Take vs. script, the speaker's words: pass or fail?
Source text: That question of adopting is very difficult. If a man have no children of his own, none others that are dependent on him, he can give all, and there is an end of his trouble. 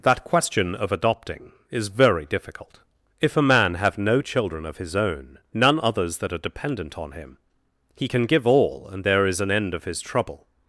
pass